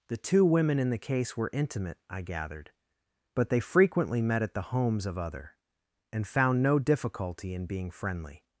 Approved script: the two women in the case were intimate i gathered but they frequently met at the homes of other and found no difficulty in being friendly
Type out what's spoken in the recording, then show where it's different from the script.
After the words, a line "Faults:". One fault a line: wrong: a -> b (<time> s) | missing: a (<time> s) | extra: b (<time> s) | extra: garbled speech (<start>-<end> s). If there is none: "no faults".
the two women in the case were intimate i gathered but they frequently met at the homes of other and found no difficulty in being friendly
Faults:
no faults